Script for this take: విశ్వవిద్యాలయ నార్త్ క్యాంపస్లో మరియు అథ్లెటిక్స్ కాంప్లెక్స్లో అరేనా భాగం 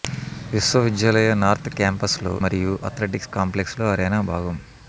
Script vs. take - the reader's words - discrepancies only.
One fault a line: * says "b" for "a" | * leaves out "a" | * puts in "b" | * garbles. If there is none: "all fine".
all fine